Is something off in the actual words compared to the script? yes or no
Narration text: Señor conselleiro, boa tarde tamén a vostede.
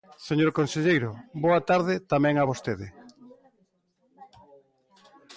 no